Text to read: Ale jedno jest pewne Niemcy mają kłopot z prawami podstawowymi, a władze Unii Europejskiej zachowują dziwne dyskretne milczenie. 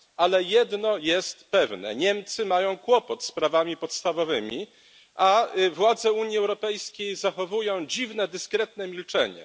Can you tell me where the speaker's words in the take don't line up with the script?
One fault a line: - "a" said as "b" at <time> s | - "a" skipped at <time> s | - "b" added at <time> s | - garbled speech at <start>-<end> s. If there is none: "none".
none